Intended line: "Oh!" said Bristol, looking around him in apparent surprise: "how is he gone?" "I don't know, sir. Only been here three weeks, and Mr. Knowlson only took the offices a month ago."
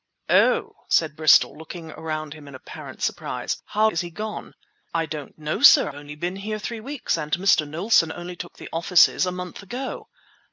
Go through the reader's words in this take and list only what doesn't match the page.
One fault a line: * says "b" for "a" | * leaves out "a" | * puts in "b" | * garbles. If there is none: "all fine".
all fine